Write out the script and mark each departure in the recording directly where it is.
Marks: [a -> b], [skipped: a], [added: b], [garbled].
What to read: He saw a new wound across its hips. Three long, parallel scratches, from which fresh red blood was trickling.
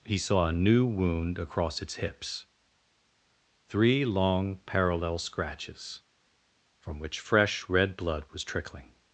He saw a new wound across its hips. Three long, parallel scratches, from which fresh red blood was trickling.